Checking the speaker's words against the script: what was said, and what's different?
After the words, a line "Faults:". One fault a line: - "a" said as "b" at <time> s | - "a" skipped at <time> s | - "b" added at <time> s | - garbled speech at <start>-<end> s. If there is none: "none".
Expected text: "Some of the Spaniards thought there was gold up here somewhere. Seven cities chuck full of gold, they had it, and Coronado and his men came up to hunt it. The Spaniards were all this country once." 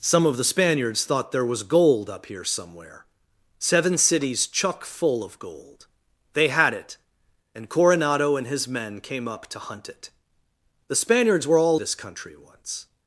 "Some of the Spaniards thought there was gold up here somewhere. Seven cities chuck full of gold, they had it, and Coronado and his men came up to hunt it. The Spaniards were all this country once."
Faults:
none